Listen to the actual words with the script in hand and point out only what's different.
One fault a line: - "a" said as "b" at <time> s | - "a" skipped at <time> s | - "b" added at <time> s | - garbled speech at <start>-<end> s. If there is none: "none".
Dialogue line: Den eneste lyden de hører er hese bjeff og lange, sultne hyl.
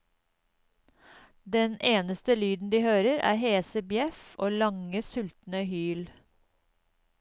none